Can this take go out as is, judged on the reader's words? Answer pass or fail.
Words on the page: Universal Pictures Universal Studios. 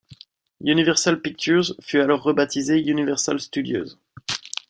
fail